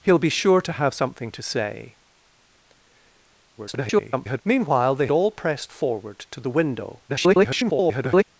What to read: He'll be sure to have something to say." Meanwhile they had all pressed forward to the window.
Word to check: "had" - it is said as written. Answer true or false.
false